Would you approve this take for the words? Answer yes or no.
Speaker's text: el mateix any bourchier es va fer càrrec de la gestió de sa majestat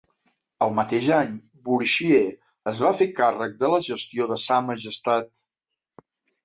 yes